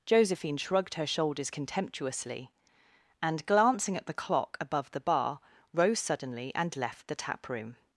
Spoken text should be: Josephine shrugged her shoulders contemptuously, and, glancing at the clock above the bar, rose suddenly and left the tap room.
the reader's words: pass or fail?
pass